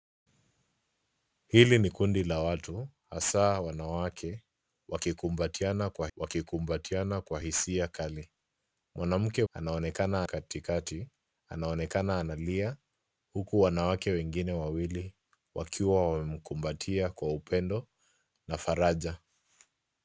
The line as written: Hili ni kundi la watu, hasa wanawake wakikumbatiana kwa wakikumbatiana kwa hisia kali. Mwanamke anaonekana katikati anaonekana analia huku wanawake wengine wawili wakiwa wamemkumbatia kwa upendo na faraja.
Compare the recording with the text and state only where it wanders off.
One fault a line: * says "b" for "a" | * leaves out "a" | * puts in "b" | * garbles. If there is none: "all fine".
all fine